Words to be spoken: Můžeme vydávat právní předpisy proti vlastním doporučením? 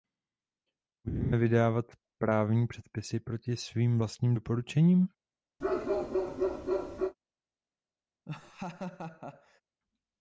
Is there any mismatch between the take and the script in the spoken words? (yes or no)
yes